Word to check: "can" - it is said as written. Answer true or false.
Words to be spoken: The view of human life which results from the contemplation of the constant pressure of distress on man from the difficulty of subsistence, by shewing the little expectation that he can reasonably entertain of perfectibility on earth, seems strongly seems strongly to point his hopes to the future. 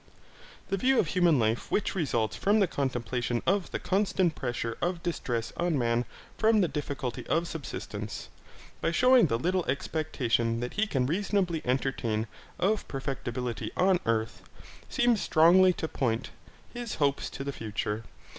true